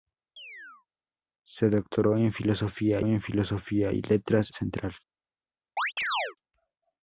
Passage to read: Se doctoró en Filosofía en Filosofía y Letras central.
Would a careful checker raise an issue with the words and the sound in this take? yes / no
yes